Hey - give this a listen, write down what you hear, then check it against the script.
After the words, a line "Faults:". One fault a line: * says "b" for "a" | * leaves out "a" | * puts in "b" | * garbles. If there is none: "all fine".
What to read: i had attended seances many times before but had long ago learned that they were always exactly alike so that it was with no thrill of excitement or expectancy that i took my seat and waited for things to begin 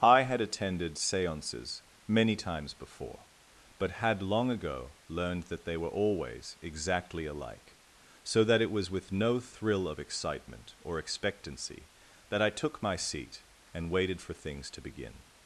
i had attended seances many times before but had long ago learned that they were always exactly alike so that it was with no thrill of excitement or expectancy that i took my seat and waited for things to begin
Faults:
all fine